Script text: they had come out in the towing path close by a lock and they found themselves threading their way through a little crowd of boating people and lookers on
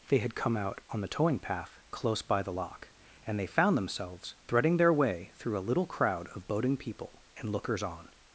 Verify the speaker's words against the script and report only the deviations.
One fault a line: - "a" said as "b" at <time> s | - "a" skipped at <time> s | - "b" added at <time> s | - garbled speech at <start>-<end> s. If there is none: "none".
- "in" said as "on" at 0.9 s
- "a" said as "the" at 2.4 s